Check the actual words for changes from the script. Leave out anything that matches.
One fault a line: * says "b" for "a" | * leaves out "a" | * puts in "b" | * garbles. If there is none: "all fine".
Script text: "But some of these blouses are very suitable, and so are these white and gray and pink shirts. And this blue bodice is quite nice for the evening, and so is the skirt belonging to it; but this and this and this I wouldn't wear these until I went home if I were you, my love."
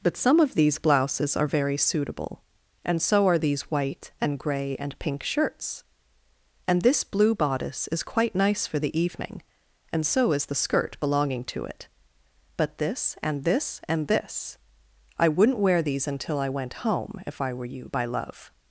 * says "by" for "my"